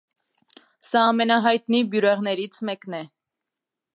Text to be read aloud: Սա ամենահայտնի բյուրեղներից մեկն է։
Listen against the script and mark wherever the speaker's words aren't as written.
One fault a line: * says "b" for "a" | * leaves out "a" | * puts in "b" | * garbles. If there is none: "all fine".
all fine